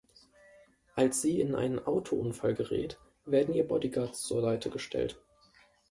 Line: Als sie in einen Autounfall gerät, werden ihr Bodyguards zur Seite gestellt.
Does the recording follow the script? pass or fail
pass